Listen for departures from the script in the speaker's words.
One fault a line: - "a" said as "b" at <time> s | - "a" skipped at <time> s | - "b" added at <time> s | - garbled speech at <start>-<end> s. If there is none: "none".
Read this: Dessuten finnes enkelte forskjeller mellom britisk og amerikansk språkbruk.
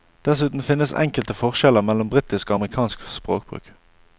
none